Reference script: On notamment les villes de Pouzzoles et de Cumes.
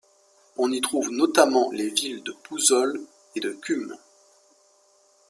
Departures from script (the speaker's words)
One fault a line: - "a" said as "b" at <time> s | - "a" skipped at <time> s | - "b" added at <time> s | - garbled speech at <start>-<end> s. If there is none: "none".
- "y trouve" added at 0.7 s